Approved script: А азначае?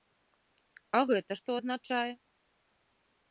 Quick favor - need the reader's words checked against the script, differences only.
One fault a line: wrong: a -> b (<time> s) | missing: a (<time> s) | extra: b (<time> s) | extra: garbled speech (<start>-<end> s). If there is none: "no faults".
extra: гэта што (1.1 s)